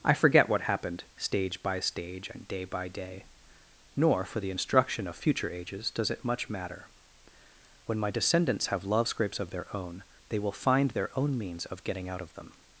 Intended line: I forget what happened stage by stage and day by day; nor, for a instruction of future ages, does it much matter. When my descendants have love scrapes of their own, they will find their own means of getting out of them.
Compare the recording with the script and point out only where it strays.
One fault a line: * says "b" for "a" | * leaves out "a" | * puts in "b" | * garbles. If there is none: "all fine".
* says "the" for "a"